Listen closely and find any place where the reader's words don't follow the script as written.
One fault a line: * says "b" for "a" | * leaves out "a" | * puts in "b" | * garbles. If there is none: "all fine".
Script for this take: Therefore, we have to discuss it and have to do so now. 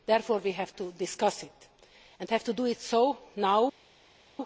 all fine